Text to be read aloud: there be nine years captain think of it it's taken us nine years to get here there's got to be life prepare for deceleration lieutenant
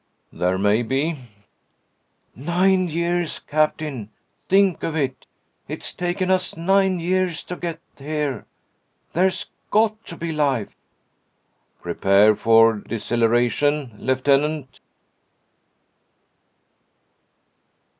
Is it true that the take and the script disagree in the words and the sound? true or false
true